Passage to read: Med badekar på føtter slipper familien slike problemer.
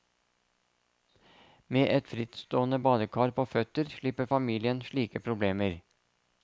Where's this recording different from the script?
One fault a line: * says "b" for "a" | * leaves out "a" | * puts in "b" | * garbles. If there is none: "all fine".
* puts in "et frittstående"